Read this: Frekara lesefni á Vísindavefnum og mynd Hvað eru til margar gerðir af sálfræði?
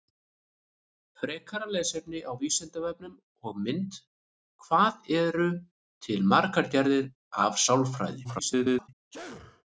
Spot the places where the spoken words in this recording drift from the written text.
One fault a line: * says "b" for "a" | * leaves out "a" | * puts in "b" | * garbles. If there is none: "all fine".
* garbles